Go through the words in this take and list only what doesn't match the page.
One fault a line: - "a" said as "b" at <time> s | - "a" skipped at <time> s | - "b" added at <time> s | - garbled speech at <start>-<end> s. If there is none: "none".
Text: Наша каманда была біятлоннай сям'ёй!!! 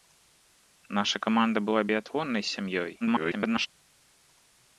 - garbled speech at 3.0-3.7 s